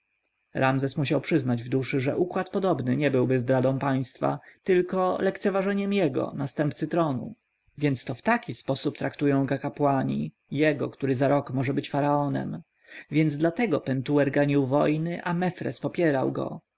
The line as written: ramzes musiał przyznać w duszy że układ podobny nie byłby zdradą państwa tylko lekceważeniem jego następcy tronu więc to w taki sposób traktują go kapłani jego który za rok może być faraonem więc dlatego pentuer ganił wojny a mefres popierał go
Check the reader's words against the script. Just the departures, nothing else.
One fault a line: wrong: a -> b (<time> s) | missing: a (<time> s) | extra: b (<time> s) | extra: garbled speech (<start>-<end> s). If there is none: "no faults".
no faults